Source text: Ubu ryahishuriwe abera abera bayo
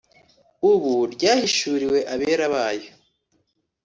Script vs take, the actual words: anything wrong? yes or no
yes